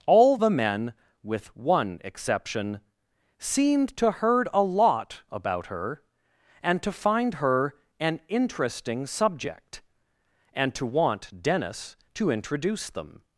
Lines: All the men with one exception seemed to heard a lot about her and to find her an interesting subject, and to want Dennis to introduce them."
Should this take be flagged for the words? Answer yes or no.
no